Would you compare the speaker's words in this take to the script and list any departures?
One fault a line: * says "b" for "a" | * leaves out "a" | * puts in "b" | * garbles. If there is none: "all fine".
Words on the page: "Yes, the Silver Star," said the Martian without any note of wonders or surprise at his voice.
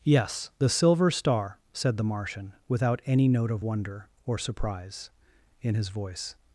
* says "wonder" for "wonders"
* says "in" for "at"